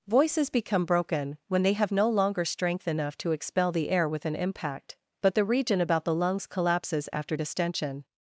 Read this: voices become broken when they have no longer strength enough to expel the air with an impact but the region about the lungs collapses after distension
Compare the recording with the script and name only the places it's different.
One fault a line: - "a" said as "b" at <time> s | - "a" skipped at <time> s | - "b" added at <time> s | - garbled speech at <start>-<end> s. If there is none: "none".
none